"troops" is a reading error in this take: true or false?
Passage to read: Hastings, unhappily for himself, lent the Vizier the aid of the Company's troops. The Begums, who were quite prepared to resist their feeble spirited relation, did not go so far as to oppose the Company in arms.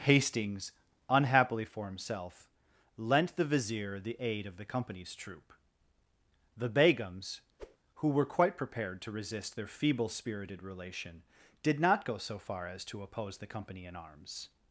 true